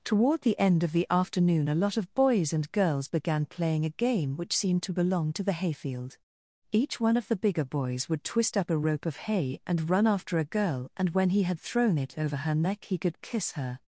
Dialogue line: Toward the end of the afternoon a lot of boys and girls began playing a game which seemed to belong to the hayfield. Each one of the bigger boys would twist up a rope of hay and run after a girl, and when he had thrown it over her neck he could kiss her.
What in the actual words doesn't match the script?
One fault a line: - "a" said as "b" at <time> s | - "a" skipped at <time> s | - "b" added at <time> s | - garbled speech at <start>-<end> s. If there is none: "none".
none